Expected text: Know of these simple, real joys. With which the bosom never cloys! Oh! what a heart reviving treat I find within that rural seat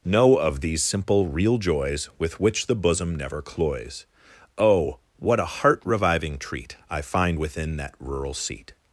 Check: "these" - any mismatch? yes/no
no